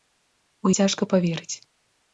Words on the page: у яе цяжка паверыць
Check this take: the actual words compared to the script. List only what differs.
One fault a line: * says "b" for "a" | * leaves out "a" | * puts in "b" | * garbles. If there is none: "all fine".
* leaves out "яе"